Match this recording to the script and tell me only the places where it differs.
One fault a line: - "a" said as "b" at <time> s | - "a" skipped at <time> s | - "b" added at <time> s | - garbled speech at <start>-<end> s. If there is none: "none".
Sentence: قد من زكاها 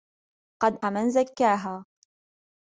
none